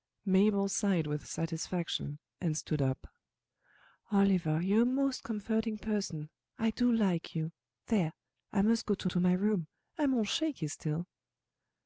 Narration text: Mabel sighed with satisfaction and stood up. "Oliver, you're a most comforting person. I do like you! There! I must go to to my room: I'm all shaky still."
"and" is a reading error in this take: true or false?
false